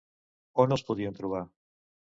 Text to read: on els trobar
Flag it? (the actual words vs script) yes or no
yes